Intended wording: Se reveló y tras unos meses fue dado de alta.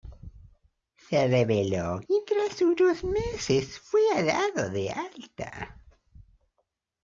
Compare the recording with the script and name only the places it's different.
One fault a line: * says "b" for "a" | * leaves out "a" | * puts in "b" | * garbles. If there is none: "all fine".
all fine